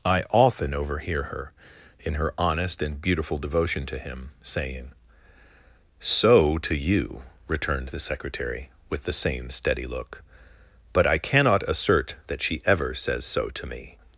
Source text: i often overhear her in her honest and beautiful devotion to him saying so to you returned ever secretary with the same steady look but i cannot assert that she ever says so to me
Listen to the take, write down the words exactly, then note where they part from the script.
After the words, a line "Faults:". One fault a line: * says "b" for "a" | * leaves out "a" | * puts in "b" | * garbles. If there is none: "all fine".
i often overhear her in her honest and beautiful devotion to him saying so to you returned the secretary with the same steady look but i cannot assert that she ever says so to me
Faults:
* says "the" for "ever"